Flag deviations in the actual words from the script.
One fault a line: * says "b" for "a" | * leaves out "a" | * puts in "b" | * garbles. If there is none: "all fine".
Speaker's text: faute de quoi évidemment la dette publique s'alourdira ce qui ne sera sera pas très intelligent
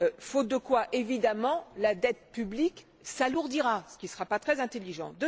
* leaves out "sera"